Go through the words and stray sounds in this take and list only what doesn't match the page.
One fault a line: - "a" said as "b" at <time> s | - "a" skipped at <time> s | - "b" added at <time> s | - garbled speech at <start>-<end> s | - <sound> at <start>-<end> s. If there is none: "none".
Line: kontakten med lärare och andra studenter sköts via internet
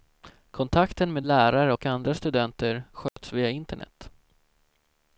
- dropout at 3.1-3.2 s